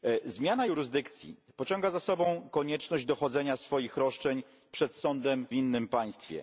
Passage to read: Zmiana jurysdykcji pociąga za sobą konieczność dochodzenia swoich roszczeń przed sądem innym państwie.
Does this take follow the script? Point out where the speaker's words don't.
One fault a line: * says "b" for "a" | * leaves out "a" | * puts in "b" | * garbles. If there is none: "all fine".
all fine